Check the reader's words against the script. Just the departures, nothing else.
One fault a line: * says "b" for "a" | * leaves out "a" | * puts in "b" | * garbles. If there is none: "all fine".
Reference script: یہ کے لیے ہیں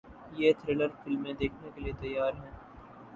* puts in "تھرلر فلمیں دیکھنے"
* puts in "تیار"